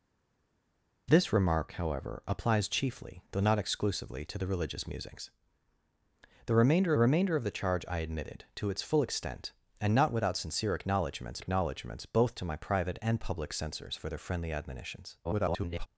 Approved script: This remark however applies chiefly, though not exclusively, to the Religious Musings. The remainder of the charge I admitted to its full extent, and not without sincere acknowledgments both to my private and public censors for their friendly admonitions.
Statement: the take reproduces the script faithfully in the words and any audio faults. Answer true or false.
false